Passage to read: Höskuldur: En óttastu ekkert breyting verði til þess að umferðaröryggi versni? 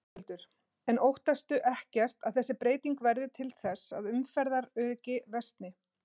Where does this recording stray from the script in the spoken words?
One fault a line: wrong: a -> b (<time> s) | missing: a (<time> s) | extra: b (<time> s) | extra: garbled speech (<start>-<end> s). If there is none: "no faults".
extra: að þessi (2.3 s)